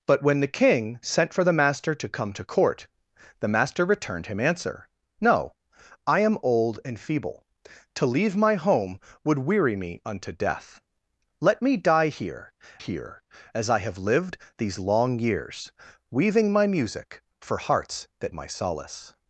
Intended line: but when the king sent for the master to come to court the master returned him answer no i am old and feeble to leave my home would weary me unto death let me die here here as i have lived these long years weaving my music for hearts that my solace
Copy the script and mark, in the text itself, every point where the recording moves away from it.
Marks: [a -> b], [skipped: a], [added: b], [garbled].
but when the king sent for the master to come to court the master returned him answer no i am old and feeble to leave my home would weary me unto death let me die here here as i have lived these long years weaving my music for hearts that my solace